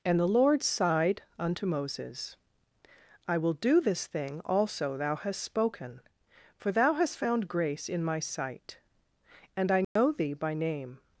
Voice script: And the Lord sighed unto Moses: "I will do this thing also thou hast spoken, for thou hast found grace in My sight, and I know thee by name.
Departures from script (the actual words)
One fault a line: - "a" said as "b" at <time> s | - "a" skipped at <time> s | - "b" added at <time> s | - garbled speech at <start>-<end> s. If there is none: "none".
none